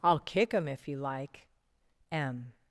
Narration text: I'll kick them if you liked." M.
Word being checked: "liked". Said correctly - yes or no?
no